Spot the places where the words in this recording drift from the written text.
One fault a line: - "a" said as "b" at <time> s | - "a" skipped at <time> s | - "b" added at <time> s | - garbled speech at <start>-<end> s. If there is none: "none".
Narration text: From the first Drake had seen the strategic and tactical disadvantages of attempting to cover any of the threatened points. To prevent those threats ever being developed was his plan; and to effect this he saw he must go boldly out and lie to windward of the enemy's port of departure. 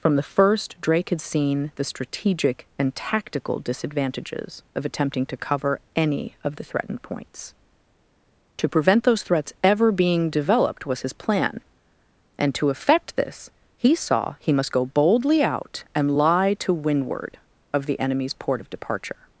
none